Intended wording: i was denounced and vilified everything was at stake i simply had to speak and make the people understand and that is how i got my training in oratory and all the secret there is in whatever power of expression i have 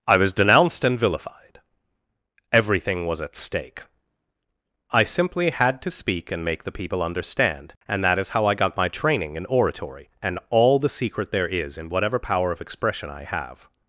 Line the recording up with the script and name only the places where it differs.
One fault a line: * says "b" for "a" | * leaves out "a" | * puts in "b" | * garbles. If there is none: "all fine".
all fine